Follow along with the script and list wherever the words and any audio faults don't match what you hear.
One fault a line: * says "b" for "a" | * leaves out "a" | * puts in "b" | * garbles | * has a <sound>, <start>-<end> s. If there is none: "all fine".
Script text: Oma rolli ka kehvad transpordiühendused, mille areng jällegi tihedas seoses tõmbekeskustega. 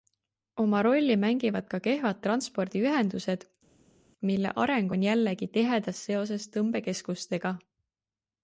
* puts in "mängivad"
* puts in "on"